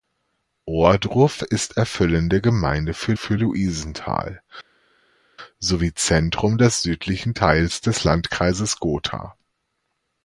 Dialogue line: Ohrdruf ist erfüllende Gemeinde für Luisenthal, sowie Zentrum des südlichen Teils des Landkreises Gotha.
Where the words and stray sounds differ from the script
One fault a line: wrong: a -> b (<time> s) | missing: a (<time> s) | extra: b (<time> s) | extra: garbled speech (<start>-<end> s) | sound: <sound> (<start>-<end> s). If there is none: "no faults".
extra: für (3.2 s)